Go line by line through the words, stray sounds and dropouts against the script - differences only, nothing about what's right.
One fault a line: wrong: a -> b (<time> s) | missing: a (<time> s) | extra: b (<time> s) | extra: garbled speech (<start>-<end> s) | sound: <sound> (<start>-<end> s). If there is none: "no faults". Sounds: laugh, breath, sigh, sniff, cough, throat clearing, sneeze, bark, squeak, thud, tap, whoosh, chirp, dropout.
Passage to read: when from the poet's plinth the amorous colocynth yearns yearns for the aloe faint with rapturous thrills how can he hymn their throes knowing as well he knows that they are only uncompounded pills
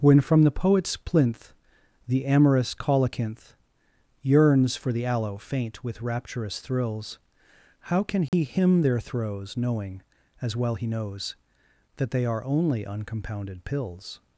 missing: yearns (4.8 s)
sound: dropout (8.3-8.3 s)